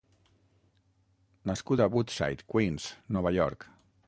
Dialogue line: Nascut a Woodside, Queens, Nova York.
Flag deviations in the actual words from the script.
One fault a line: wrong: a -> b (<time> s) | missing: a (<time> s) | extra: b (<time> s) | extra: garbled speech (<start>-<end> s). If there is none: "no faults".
no faults